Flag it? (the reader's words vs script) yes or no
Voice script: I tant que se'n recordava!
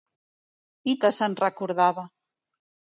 yes